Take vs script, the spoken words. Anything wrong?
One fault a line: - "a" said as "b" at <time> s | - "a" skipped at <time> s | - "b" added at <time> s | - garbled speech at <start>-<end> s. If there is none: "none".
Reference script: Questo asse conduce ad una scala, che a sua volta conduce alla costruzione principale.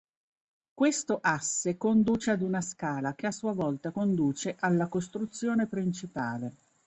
none